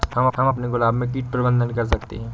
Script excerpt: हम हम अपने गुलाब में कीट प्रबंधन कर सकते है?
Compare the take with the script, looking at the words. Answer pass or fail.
pass